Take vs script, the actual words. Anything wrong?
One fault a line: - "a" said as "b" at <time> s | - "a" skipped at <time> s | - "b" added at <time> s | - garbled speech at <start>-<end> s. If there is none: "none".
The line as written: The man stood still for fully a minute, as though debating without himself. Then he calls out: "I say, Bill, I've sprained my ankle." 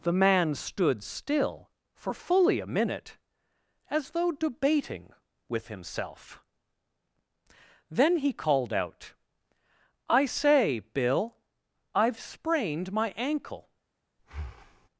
- "without" said as "with" at 5.5 s
- "calls" said as "called" at 8.3 s